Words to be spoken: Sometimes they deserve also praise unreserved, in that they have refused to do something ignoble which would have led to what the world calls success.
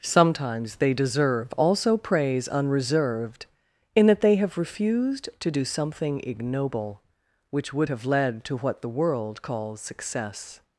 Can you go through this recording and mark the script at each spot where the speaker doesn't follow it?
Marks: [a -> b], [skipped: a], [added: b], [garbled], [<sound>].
Sometimes they deserve also praise unreserved, in that they have refused to do something ignoble which would have led to what the world calls success.